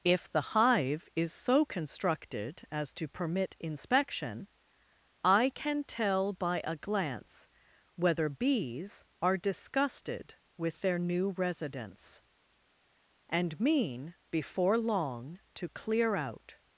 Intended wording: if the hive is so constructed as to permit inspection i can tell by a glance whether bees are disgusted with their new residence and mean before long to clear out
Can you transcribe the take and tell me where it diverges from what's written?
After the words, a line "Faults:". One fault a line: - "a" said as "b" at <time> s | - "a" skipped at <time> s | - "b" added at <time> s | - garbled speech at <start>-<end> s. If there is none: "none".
if the hive is so constructed as to permit inspection i can tell by a glance whether bees are disgusted with their new residence and mean before long to clear out
Faults:
none